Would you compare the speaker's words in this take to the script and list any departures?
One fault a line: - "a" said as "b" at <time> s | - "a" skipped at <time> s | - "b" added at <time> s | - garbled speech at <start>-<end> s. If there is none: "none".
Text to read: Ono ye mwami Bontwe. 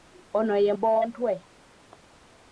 - "mwami" skipped at 0.7 s